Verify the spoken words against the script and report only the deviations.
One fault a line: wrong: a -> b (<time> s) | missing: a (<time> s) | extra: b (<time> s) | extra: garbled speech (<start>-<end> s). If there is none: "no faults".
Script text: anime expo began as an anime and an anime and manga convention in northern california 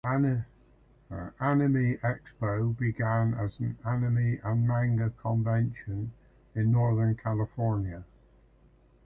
missing: an anime and (4.7 s)